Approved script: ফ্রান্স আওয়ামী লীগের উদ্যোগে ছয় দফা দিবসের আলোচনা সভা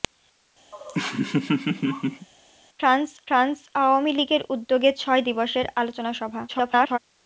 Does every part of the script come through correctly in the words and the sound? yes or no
no